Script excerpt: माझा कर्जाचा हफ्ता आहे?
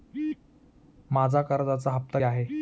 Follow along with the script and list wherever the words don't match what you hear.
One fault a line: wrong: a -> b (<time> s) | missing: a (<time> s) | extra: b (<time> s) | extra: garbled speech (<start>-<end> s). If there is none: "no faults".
no faults